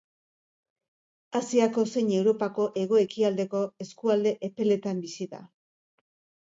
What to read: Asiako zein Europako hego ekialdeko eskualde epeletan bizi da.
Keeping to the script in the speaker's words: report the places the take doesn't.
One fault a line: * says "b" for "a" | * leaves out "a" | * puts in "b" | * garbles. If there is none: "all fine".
all fine